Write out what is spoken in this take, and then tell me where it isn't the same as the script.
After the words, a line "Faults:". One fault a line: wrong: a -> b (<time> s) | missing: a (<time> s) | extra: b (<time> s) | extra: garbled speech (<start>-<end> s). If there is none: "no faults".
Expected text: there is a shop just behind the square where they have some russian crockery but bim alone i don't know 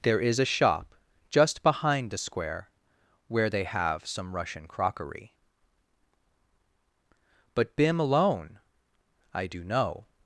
there is a shop just behind the square where they have some russian crockery but bim alone i do know
Faults:
wrong: don't -> do (9.5 s)